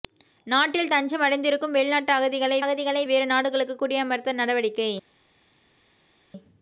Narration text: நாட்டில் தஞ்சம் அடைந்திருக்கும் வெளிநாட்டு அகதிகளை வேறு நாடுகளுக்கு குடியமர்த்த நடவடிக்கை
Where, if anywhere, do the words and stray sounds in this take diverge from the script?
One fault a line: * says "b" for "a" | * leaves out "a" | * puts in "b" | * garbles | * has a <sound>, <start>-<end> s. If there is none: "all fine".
* puts in "அகதிகளை"